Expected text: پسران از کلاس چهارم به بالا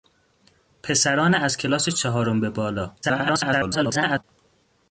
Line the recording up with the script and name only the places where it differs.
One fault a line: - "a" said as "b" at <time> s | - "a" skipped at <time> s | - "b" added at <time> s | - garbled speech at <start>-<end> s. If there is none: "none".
- garbled speech at 3.0-4.2 s